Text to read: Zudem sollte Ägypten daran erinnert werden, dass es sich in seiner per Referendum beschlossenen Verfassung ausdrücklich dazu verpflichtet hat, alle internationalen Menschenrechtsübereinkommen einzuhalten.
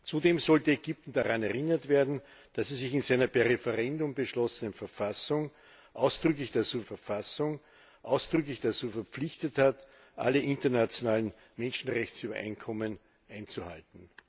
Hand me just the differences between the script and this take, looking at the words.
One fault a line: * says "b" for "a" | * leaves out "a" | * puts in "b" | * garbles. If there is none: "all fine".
* puts in "Verfassung ausdrücklich dazu"